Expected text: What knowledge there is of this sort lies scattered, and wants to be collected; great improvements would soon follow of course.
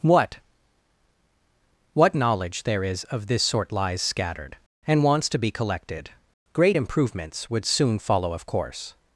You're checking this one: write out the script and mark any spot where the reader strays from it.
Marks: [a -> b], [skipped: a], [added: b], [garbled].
What [added: what] knowledge there is of this sort lies scattered, and wants to be collected; great improvements would soon follow of course.